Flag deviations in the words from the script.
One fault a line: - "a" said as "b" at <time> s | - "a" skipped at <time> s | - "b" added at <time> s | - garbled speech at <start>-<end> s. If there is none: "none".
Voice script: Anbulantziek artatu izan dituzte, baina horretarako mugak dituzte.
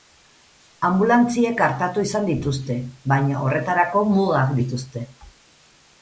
none